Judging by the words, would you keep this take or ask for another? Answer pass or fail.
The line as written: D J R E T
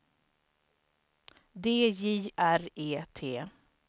pass